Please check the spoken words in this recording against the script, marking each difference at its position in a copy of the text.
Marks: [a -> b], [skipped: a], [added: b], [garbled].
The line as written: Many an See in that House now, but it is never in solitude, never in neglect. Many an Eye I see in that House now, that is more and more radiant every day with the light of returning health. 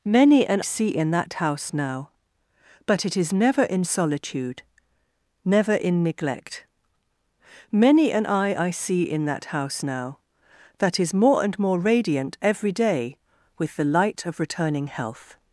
Many an See in that House now, but it is never in solitude, never in neglect. Many an Eye I see in that House now, that is more and more radiant every day with the light of returning health.